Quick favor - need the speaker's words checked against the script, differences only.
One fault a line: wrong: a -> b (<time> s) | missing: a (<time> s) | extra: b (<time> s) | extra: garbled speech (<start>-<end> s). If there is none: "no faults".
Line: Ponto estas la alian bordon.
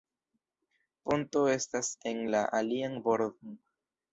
extra: en (2.1 s)